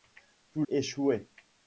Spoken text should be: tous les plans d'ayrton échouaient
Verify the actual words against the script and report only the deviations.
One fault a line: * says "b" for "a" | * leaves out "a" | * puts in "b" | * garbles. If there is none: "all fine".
* leaves out "les plans d'ayrton"